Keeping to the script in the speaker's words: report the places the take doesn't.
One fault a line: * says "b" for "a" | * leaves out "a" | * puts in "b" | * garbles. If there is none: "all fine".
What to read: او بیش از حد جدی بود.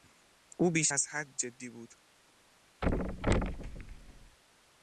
all fine